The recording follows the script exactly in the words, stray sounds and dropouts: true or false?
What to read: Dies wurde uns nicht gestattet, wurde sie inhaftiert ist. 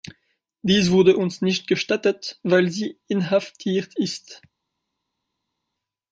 false